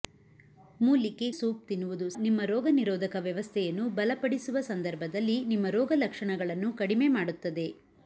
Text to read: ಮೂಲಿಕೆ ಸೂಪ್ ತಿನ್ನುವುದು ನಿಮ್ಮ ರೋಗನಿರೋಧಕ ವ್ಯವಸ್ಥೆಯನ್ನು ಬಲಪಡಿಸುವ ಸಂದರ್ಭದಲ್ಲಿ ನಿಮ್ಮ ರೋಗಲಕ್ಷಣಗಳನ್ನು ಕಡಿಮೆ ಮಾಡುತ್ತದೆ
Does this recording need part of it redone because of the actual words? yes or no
no